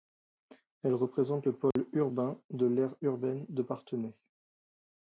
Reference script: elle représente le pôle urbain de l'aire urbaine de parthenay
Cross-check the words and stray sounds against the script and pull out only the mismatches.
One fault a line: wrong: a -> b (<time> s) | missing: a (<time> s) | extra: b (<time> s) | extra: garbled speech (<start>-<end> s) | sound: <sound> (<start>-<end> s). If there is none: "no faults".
sound: dropout (1.7-1.8 s)